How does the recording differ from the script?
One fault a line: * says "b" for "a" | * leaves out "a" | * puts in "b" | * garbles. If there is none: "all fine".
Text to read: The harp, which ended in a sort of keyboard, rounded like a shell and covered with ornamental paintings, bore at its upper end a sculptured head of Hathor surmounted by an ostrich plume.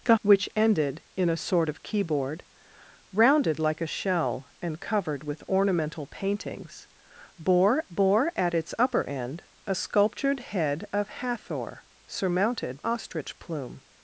* leaves out "harp"
* puts in "bore"
* leaves out "by an"